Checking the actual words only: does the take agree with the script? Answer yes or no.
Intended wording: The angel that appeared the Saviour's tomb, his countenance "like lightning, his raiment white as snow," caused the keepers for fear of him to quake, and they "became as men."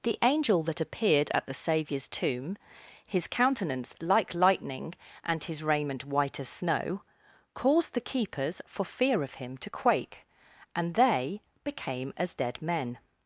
no